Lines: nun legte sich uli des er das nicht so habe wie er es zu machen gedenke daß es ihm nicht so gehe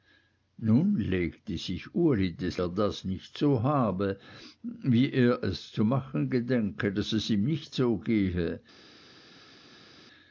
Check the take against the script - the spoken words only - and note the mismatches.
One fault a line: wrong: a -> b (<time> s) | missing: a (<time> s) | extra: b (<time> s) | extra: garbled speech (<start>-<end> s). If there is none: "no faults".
no faults